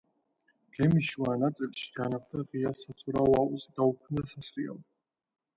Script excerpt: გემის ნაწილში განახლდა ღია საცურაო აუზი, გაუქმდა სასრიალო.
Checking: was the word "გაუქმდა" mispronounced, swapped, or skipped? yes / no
no